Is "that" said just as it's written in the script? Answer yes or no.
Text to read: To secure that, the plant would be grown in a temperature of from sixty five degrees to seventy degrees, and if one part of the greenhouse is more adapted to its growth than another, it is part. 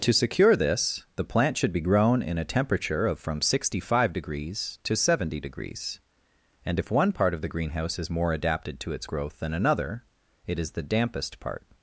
no